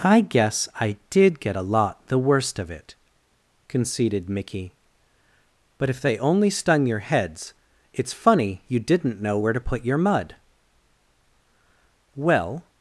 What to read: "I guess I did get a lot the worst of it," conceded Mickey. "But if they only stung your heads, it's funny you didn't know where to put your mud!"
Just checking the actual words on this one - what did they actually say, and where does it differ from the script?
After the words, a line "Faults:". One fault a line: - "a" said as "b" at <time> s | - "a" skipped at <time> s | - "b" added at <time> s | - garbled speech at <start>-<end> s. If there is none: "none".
"I guess I did get a lot the worst of it," conceded Mickey. "But if they only stung your heads, it's funny you didn't know where to put your mud!" "Well
Faults:
- "Well" added at 12.1 s